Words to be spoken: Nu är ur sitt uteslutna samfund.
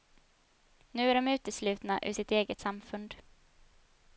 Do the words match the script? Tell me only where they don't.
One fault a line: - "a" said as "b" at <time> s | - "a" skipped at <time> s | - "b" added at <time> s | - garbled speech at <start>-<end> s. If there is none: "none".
- "de uteslutna" added at 1.1 s
- "uteslutna" said as "eget" at 2.3 s